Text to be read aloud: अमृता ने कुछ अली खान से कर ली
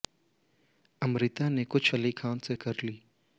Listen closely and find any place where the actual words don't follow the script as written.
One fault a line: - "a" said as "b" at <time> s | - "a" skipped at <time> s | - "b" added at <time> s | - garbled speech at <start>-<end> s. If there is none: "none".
none